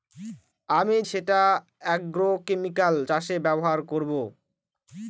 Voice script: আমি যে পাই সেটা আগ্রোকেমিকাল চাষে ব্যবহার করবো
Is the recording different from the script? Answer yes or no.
yes